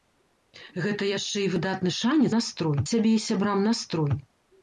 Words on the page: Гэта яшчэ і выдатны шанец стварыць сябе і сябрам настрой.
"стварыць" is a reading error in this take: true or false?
true